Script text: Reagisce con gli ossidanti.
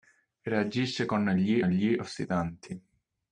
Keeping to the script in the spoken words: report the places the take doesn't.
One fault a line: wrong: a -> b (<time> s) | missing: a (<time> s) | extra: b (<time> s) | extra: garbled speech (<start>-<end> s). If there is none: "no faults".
extra: gli (1.6 s)